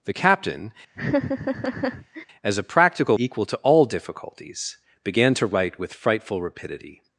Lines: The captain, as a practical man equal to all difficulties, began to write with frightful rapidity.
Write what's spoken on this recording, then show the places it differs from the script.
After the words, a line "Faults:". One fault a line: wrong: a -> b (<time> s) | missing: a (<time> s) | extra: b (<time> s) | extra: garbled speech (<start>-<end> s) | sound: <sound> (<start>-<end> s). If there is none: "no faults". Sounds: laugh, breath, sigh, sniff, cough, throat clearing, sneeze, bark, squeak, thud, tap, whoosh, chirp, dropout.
The captain, as a practical equal to all difficulties, began to write with frightful rapidity.
Faults:
sound: laugh (0.9-2.3 s)
missing: man (3.2 s)